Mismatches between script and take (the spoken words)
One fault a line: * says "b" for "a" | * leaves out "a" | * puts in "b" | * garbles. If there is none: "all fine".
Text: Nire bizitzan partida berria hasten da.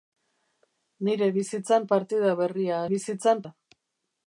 * says "bizitzan" for "hasten"